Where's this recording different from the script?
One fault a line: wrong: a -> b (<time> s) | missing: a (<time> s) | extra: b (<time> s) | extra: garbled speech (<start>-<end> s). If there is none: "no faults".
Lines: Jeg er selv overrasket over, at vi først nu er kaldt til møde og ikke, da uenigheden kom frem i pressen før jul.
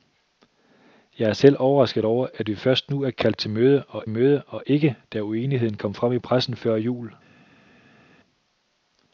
extra: møde og (4.1 s)